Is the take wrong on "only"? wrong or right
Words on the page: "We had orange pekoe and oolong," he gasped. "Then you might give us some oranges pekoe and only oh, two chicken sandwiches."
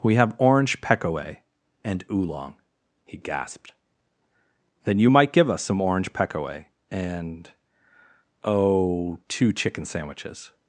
wrong